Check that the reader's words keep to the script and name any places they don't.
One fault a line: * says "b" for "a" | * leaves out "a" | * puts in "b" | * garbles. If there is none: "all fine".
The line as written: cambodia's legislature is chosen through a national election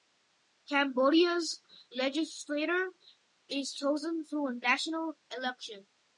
all fine